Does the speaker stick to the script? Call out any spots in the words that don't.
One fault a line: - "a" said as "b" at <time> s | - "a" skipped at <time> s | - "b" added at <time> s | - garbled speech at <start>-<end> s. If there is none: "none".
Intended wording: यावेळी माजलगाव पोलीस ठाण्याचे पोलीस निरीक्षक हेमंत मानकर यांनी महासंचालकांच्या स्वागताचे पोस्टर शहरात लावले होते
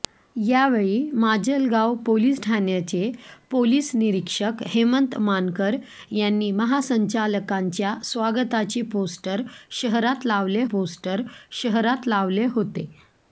- "पोस्टर शहरात लावले" added at 10.7 s